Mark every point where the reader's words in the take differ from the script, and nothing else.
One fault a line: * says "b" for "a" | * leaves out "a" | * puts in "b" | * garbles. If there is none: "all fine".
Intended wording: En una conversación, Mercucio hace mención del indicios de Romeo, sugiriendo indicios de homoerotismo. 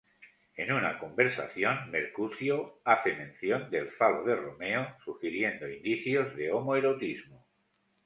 * says "falo" for "indicios"